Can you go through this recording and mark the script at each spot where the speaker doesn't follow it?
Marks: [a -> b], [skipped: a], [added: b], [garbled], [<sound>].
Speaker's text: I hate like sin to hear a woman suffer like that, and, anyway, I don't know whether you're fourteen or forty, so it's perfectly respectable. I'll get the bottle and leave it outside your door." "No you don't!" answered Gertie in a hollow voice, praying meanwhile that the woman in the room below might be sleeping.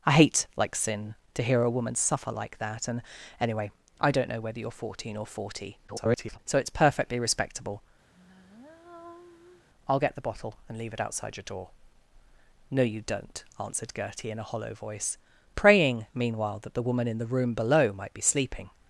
I hate like sin to hear a woman suffer like that, and, anyway, I don't know whether you're fourteen or forty, [garbled] so it's perfectly respectable. [sigh] I'll get the bottle and leave it outside your door." "No you don't!" answered Gertie in a hollow voice, praying meanwhile that the woman in the room below might be sleeping.